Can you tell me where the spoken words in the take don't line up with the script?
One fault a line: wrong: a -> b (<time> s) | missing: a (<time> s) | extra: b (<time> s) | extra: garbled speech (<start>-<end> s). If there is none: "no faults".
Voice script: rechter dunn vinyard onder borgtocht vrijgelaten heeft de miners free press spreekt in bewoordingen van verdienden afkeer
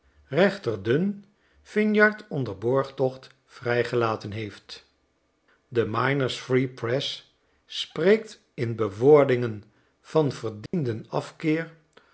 no faults